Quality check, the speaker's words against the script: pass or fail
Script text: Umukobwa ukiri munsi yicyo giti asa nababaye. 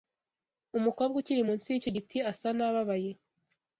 pass